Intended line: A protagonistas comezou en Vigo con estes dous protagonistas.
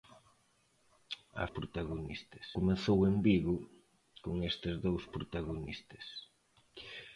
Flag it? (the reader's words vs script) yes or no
no